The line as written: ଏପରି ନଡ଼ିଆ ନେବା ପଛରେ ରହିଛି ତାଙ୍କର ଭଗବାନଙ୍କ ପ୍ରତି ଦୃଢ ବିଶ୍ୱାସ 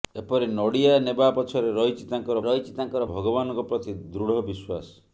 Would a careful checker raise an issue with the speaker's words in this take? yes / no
yes